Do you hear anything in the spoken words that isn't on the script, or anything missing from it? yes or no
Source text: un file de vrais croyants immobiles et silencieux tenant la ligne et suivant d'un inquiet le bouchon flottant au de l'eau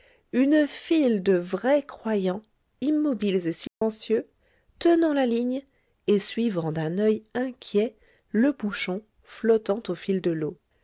yes